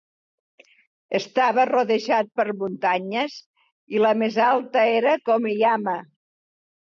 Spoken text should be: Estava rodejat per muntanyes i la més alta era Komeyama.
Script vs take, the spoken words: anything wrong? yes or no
no